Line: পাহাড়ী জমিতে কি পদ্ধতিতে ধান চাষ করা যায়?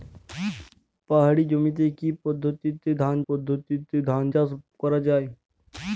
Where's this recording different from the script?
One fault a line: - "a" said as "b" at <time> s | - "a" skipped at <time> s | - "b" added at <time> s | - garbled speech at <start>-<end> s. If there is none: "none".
- "পদ্ধতিতে ধান" added at 3.3 s